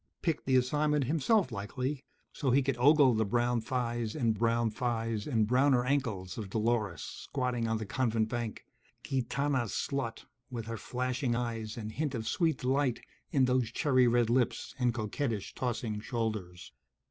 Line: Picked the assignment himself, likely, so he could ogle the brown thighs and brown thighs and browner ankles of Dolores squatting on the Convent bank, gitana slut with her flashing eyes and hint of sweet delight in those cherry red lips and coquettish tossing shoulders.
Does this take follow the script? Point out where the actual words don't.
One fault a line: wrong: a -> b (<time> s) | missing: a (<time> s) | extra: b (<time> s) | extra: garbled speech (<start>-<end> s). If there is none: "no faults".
no faults